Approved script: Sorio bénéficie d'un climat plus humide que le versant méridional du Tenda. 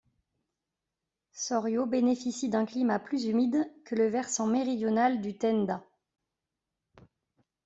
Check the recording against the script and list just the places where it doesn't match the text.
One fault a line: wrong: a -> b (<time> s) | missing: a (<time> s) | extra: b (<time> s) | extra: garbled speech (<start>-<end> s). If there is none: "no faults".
no faults